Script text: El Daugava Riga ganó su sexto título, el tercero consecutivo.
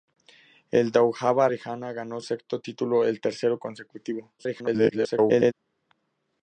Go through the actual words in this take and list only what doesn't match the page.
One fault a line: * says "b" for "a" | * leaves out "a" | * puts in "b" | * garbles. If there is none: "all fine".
* leaves out "su"
* garbles